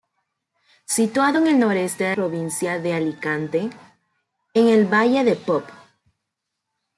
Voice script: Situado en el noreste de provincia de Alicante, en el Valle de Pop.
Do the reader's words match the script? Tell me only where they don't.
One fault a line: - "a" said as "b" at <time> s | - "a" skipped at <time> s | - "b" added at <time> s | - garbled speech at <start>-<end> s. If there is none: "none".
none